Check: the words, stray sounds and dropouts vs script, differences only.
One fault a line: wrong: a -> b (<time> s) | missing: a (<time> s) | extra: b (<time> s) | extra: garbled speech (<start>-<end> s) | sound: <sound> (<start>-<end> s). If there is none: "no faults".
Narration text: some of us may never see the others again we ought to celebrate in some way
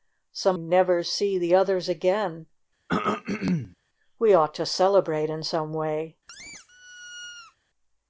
missing: of us may (0.6 s)
sound: throat clearing (2.9-3.8 s)
sound: squeak (6.3-7.6 s)